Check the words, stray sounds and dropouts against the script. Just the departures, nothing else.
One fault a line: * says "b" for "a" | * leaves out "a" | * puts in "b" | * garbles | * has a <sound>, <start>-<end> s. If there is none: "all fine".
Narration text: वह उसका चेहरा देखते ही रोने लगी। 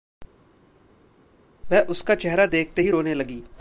all fine